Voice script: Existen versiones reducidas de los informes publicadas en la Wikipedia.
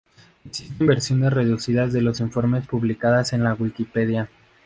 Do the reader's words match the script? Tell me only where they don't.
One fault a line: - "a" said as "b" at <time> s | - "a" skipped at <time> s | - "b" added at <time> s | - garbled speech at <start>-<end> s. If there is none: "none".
none